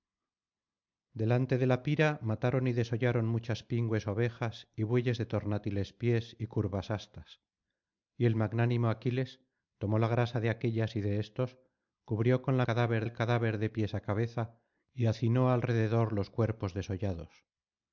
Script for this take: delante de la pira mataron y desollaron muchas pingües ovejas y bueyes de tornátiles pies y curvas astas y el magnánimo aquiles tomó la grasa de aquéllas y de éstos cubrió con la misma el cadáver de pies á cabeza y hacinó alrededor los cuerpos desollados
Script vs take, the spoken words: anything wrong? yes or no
yes